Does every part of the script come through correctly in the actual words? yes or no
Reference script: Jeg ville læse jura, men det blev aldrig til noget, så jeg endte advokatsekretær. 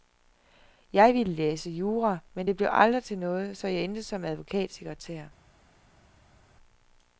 no